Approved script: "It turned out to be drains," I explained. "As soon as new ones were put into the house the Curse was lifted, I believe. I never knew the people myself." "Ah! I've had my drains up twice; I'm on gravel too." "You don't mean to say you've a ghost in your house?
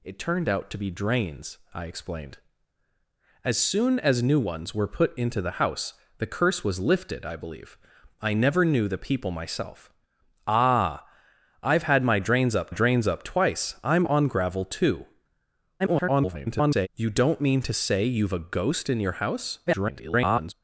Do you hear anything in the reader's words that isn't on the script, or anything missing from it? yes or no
yes